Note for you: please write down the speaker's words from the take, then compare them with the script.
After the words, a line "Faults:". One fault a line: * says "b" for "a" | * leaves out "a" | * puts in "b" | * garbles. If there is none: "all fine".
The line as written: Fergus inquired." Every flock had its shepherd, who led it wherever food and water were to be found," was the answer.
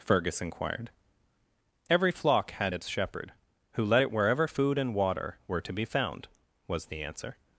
Fergus inquired." Every flock had its shepherd, who led it wherever food and water were to be found," was the answer.
Faults:
all fine